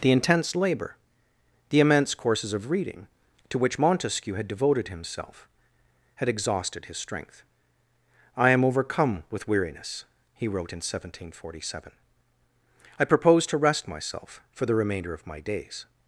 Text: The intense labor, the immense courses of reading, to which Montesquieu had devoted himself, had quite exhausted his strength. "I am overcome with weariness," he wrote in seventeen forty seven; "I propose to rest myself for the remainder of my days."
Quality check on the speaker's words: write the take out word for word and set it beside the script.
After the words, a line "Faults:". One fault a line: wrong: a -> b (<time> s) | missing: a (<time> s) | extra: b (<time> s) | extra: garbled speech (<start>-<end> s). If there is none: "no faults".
The intense labor, the immense courses of reading, to which Montesquieu had devoted himself, had exhausted his strength. "I am overcome with weariness," he wrote in seventeen forty seven; "I propose to rest myself for the remainder of my days."
Faults:
missing: quite (6.3 s)